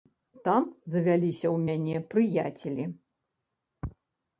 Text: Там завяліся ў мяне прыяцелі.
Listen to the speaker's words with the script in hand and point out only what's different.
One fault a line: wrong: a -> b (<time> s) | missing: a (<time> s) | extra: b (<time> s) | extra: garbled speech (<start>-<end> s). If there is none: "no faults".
no faults